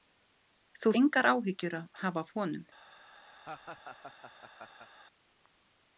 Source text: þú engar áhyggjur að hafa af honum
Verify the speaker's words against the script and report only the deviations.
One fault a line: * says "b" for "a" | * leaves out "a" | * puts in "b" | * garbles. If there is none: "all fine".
all fine